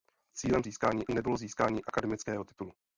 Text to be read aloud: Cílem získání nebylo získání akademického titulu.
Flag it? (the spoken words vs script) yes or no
no